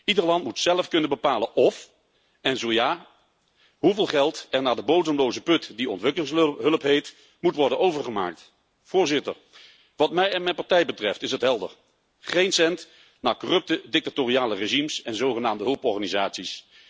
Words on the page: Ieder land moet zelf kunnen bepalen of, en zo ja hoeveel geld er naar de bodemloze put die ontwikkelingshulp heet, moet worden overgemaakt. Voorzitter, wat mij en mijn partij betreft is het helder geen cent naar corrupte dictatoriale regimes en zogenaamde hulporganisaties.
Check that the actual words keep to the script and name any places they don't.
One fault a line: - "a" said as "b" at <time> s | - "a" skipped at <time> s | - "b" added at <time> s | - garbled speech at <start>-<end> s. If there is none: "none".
none